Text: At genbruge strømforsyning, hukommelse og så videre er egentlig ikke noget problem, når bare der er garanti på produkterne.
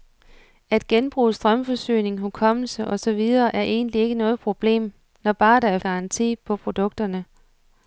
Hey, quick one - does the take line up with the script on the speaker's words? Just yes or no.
yes